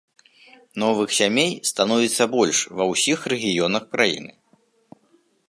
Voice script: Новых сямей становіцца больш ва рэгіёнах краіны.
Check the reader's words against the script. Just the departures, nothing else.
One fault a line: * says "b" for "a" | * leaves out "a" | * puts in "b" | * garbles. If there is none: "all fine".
* puts in "ўсіх"